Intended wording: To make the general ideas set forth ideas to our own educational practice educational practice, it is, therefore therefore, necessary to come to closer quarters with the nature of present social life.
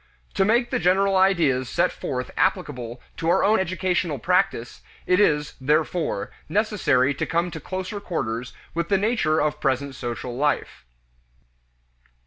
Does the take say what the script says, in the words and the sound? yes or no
no